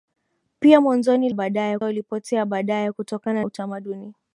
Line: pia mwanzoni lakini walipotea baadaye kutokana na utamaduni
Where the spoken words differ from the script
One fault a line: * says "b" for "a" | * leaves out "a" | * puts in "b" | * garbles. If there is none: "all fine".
* says "baadaye" for "lakini"
* leaves out "na"